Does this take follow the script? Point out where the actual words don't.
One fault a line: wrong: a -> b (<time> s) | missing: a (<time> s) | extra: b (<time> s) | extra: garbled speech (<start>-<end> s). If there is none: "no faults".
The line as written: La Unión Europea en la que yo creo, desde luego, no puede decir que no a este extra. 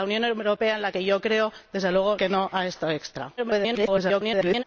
missing: no puede decir (2.2 s)
extra: garbled speech (3.4-4.6 s)